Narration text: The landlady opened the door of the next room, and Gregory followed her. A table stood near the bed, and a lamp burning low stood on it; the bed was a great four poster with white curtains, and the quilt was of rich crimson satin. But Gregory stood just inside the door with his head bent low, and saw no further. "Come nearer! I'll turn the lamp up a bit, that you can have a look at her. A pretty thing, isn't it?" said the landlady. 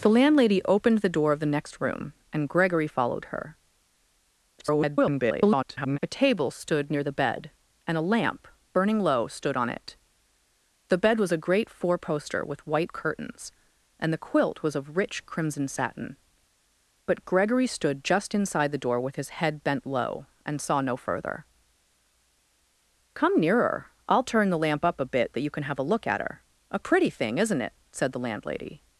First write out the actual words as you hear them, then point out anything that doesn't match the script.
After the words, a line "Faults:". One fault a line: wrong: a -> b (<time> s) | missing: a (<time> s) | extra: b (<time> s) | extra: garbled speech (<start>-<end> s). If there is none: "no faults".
The landlady opened the door of the next room, and Gregory followed her. [garbled] A table stood near the bed, and a lamp burning low stood on it; the bed was a great four poster with white curtains, and the quilt was of rich crimson satin. But Gregory stood just inside the door with his head bent low, and saw no further. "Come nearer! I'll turn the lamp up a bit, that you can have a look at her. A pretty thing, isn't it?" said the landlady.
Faults:
extra: garbled speech (4.6-6.0 s)